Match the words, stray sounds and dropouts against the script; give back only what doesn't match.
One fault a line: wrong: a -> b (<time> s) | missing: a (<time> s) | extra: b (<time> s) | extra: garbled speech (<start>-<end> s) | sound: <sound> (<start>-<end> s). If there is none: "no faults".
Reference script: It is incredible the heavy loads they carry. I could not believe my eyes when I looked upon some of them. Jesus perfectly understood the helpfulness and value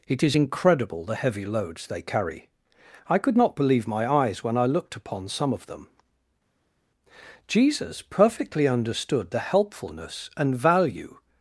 no faults